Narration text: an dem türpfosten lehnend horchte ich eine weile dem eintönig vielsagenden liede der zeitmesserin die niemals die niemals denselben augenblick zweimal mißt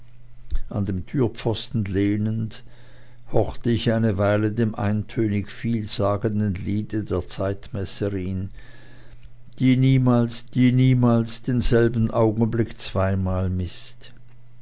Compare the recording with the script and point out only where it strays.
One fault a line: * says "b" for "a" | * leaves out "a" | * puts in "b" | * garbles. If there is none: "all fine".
all fine